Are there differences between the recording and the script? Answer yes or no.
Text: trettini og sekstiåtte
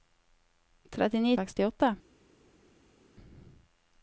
no